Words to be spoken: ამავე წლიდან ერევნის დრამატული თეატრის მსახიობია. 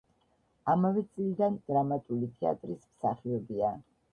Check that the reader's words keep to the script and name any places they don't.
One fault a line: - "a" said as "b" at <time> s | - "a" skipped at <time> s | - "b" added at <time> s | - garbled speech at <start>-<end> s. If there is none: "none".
- "ერევნის" skipped at 1.6 s